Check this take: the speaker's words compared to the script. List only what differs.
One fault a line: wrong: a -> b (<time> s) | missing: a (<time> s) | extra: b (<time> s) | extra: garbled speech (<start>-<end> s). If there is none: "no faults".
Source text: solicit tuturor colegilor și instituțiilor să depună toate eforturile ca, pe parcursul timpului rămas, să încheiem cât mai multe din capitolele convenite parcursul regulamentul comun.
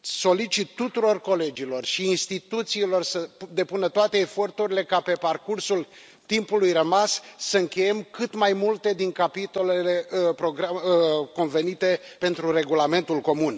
wrong: parcursul -> pentru (12.2 s)